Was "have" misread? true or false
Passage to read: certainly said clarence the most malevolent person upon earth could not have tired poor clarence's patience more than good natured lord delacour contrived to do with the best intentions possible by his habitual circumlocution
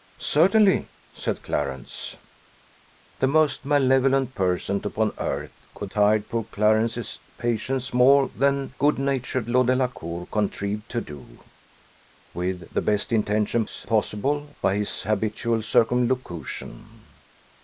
true